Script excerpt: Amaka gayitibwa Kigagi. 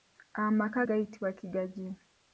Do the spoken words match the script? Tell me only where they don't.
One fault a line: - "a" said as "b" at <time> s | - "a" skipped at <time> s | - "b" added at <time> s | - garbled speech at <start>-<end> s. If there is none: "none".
none